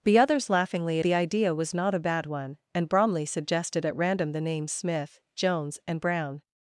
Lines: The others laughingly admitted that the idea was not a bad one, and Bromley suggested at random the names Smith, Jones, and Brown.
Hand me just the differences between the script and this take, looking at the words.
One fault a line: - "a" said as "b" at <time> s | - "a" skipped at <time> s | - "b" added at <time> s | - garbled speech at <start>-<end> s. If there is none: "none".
- "admitted that" skipped at 1.0 s